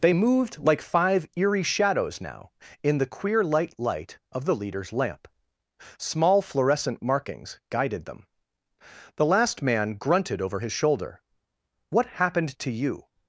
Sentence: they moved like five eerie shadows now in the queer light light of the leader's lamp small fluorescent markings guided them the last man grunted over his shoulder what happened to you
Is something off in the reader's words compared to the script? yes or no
no